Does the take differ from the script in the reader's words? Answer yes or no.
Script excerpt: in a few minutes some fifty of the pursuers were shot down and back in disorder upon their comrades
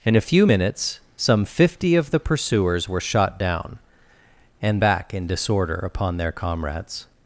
no